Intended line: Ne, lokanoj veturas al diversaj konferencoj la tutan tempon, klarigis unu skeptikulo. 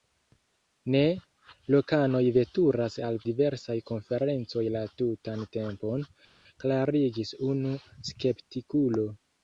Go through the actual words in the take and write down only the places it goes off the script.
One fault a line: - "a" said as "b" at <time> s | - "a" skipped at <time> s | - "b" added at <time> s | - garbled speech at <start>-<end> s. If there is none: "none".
none